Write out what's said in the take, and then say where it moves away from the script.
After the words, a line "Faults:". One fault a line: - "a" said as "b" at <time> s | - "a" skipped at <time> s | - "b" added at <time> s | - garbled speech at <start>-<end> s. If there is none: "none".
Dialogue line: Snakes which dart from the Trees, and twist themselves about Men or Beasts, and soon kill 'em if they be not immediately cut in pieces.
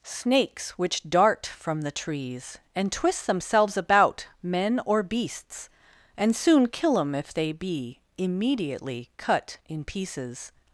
Snakes which dart from the Trees, and twist themselves about Men or Beasts, and soon kill 'em if they be immediately cut in pieces.
Faults:
- "not" skipped at 8.0 s